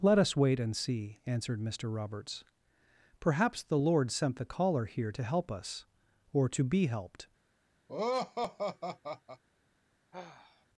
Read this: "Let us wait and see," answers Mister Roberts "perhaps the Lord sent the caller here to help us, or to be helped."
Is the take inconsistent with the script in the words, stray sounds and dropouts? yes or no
yes